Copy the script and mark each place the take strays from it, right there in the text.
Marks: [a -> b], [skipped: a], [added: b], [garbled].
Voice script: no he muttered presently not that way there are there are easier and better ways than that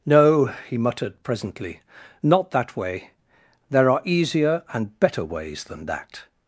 no he muttered presently not that way there are [skipped: there are] easier and better ways than that